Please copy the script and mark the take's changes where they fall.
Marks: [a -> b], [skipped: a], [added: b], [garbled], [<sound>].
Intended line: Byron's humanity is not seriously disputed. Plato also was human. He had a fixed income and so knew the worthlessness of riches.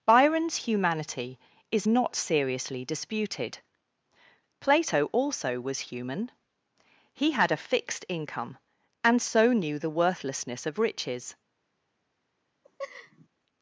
Byron's humanity is not seriously disputed. Plato also was human. He had a fixed income and so knew the worthlessness of riches. [laugh]